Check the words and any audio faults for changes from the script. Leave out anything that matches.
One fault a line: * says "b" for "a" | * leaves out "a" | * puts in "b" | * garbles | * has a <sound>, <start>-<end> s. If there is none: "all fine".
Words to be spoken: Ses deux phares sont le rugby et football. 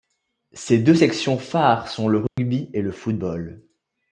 * puts in "sections"
* has a dropout, 2.3-2.4 s
* puts in "le"